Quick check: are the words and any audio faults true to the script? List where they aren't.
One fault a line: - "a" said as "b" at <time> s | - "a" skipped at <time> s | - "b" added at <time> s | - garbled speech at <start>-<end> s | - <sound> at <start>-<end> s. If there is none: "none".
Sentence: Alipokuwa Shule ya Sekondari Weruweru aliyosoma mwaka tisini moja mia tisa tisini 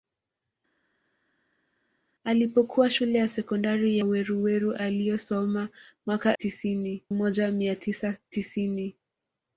none